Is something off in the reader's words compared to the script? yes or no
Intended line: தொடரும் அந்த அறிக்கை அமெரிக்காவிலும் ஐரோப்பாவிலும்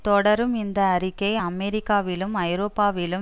yes